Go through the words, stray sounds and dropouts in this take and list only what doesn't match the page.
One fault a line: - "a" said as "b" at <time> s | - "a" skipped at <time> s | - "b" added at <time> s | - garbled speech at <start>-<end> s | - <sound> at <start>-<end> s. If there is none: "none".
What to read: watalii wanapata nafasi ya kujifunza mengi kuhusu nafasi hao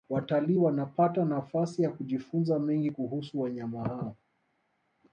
- "nafasi" said as "wanyama" at 3.4 s